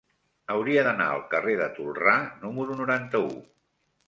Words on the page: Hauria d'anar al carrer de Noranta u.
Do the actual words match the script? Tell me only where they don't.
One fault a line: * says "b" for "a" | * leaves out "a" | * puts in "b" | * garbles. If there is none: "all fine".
* puts in "Tolrà número"